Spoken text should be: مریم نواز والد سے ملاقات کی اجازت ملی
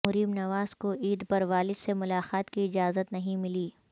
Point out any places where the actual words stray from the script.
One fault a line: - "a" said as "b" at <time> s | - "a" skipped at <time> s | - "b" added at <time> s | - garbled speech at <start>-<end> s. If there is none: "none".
- "کو عید پر" added at 0.8 s
- "نہیں" added at 3.1 s